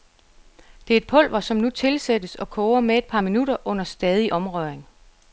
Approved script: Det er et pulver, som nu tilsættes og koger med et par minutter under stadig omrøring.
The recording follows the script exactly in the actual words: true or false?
true